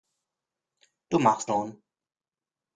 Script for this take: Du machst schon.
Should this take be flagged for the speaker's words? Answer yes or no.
no